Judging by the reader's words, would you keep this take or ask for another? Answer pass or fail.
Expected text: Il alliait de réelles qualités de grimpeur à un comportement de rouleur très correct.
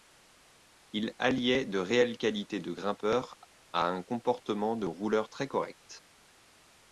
pass